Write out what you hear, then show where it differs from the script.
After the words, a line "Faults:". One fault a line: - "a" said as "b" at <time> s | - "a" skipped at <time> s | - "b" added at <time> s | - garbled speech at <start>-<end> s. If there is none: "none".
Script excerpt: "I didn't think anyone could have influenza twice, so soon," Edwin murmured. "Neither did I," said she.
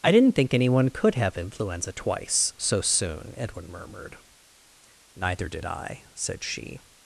"I didn't think anyone could have influenza twice, so soon," Edwin murmured. "Neither did I," said she.
Faults:
none